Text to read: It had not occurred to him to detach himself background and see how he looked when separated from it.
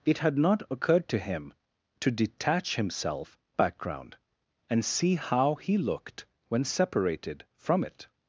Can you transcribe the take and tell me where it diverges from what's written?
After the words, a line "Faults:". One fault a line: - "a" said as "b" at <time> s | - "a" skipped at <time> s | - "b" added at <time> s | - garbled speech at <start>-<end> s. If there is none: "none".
It had not occurred to him to detach himself background and see how he looked when separated from it.
Faults:
none